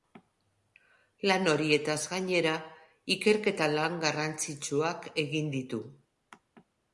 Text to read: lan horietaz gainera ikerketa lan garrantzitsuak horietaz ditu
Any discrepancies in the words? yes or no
yes